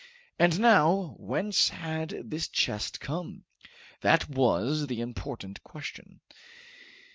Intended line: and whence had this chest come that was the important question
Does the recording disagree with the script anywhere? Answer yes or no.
yes